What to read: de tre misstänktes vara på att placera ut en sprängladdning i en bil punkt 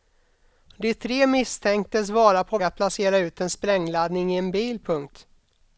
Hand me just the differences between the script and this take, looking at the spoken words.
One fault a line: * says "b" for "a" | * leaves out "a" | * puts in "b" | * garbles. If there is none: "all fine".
all fine